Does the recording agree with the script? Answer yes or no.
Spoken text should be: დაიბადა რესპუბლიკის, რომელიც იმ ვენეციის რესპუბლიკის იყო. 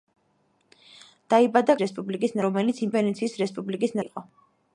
yes